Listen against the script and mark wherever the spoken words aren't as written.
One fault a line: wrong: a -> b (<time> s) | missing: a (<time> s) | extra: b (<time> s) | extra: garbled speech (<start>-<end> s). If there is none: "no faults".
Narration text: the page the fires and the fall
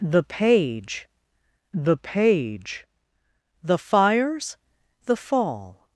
extra: page the (2.0 s)
missing: and (4.5 s)